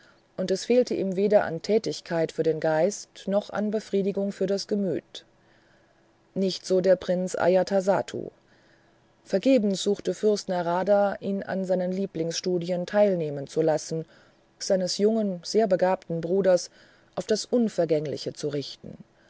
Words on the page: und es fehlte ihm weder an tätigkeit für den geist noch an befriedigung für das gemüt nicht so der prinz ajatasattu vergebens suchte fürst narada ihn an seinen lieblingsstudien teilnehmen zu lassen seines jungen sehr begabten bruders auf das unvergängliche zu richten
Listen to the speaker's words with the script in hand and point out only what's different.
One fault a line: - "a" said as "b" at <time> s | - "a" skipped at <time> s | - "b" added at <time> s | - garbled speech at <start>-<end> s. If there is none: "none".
none